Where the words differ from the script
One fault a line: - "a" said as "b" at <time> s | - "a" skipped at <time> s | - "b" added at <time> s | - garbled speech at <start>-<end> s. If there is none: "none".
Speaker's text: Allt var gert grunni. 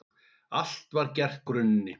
none